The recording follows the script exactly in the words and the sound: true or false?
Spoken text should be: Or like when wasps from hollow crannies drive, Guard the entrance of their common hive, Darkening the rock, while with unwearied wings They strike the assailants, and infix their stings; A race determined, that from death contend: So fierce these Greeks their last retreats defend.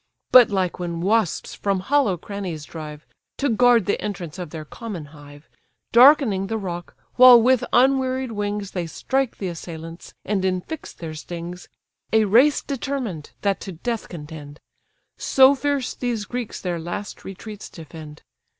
false